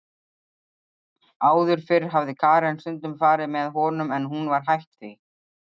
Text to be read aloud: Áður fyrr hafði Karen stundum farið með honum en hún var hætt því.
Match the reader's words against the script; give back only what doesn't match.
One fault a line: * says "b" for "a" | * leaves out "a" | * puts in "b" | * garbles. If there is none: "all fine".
all fine